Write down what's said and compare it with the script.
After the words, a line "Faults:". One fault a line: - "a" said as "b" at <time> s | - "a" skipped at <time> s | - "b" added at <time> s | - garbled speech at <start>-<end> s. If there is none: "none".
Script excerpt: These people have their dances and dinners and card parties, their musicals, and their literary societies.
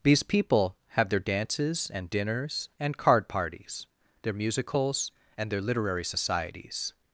These people have their dances and dinners and card parties, their musicals, and their literary societies.
Faults:
none